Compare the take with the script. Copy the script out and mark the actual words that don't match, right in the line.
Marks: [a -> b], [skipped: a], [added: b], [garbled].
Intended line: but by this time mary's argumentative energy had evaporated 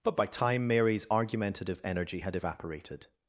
but by [skipped: this] time mary's argumentative energy had evaporated